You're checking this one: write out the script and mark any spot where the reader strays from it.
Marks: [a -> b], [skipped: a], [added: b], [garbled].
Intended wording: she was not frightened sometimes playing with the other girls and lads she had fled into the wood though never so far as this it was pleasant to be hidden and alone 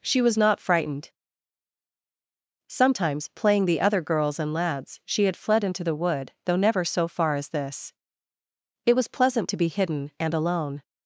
she was not frightened sometimes playing [skipped: with] the other girls and lads she had fled into the wood though never so far as this it was pleasant to be hidden and alone